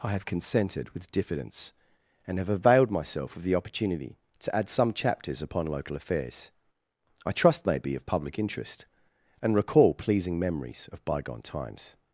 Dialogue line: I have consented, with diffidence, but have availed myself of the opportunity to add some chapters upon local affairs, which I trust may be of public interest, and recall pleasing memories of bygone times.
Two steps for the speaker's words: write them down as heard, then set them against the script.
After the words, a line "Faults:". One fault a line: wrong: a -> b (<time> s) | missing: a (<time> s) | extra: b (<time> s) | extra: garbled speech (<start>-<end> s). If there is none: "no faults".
I have consented, with diffidence, and have availed myself of the opportunity to add some chapters upon local affairs, I trust may be of public interest, and recall pleasing memories of bygone times.
Faults:
wrong: but -> and (2.2 s)
missing: which (6.5 s)